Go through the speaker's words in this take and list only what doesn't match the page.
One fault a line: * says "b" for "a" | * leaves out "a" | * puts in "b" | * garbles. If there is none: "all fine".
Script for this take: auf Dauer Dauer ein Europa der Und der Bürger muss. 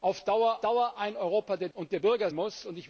all fine